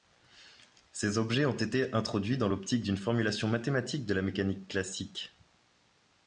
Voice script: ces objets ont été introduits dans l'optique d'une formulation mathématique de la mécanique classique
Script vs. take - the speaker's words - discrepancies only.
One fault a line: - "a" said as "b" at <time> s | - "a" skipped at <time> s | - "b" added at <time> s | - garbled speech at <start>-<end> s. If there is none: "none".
none